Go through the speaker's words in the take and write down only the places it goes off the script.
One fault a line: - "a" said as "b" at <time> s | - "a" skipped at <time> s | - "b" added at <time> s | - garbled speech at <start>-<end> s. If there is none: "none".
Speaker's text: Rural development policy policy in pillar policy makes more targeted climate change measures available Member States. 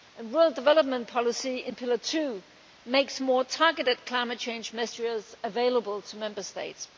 - "policy" skipped at 1.6 s
- "policy" said as "two" at 2.0 s
- "to" added at 6.0 s